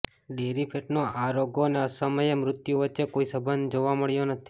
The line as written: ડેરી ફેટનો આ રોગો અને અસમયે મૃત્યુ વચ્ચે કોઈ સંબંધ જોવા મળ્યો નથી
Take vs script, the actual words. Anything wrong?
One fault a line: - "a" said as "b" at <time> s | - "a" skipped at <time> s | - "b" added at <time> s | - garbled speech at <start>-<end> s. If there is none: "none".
none